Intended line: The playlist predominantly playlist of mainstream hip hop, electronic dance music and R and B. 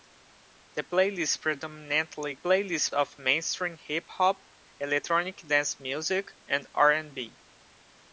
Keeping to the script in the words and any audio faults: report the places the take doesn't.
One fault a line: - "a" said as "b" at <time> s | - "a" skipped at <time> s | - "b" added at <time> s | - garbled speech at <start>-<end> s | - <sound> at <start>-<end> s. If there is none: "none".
none